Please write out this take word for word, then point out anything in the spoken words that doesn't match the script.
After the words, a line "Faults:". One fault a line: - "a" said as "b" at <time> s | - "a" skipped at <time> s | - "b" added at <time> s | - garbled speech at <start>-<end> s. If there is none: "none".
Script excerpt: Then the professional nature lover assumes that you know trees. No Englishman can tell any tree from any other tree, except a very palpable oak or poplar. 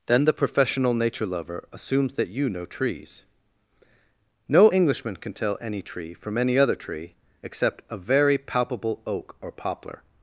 Then the professional nature lover assumes that you know trees. No Englishman can tell any tree from any other tree, except a very palpable oak or poplar.
Faults:
none